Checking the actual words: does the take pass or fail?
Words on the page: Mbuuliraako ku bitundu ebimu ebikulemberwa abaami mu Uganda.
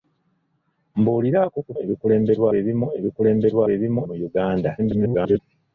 fail